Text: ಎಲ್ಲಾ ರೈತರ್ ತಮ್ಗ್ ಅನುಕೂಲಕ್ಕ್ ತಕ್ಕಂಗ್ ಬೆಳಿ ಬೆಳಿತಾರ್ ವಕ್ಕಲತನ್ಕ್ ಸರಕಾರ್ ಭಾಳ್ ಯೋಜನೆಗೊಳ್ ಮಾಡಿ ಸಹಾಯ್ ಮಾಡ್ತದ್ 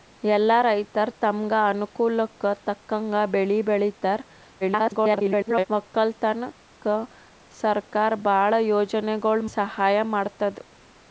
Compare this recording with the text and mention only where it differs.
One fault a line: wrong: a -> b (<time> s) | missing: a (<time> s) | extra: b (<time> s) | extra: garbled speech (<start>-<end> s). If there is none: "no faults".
extra: garbled speech (4.6-5.7 s)
missing: ಮಾಡಿ (9.4 s)